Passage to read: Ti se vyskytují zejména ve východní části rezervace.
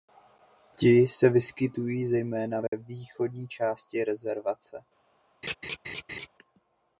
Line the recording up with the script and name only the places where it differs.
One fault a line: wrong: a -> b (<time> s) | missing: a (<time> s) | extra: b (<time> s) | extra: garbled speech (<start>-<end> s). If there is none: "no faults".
no faults